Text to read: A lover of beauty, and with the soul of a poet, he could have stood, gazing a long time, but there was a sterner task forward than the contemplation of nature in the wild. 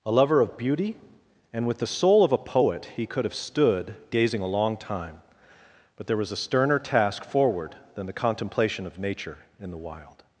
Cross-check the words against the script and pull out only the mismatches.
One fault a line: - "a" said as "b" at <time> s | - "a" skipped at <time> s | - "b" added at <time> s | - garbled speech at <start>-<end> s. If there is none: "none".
none